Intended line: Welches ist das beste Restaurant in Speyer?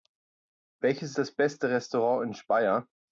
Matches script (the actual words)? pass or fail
fail